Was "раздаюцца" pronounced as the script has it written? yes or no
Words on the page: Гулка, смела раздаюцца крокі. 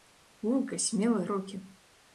no